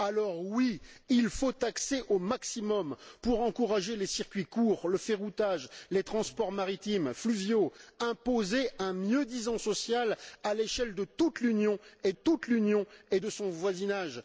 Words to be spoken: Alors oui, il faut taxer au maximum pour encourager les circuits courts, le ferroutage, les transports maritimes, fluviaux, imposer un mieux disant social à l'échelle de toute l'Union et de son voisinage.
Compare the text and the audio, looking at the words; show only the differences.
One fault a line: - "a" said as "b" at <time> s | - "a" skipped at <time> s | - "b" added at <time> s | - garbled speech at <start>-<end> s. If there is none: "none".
- "toute l'Union et" added at 12.1 s